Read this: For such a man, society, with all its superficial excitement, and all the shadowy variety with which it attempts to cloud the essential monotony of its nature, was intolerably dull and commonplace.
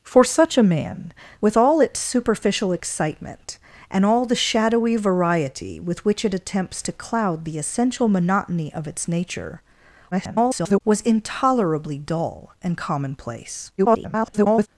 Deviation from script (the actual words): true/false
true